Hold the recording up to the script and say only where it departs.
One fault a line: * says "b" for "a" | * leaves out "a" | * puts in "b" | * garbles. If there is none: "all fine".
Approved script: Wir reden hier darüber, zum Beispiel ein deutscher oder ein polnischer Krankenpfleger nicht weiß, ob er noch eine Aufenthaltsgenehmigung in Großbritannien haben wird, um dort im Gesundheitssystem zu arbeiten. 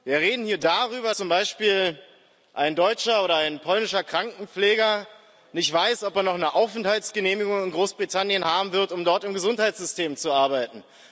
all fine